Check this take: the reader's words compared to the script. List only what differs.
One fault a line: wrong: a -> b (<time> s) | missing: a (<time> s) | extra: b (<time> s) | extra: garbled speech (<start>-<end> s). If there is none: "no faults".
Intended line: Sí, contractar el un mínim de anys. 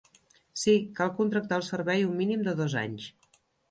extra: cal (1.0 s)
extra: servei (1.7 s)
extra: dos (2.6 s)